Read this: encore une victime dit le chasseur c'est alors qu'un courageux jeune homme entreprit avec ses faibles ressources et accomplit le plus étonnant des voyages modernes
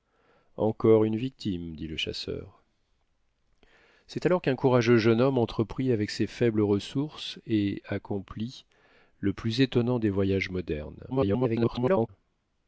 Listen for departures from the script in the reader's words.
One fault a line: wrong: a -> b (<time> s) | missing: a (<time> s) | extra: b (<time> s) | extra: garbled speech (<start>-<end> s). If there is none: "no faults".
extra: garbled speech (11.1-12.1 s)